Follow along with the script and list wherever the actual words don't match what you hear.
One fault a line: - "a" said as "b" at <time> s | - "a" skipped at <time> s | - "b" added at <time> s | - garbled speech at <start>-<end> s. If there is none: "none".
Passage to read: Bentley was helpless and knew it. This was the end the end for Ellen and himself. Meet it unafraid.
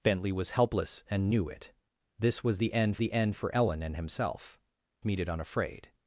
none